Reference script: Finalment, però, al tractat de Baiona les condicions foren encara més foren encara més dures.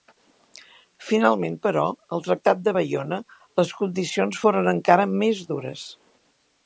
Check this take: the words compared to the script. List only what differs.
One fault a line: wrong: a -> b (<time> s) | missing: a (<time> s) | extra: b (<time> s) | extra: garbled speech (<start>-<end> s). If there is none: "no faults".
missing: foren encara més (5.4 s)